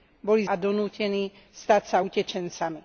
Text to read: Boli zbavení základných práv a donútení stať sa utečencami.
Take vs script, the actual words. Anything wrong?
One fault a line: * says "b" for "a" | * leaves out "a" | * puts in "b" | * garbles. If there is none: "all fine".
* leaves out "zbavení základných práv"